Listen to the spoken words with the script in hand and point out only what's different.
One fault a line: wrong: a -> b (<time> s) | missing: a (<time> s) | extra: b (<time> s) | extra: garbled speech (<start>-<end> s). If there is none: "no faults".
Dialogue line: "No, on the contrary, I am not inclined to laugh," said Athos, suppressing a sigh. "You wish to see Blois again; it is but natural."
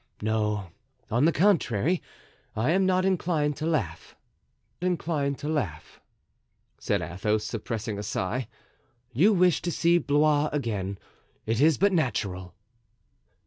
extra: inclined to laugh (4.8 s)